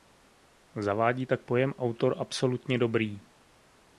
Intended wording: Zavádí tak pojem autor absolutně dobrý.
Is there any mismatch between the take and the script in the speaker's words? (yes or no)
no